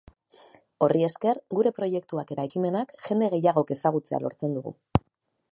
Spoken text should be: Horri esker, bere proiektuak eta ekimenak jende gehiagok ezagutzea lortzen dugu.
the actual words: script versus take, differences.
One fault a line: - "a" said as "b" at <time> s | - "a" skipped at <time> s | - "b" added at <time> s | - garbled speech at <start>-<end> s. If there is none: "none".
- "bere" said as "gure" at 1.6 s